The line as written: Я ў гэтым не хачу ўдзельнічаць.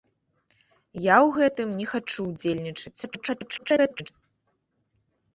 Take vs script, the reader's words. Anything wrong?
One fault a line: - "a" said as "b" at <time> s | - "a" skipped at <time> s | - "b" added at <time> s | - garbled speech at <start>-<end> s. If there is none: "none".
- garbled speech at 3.0-4.1 s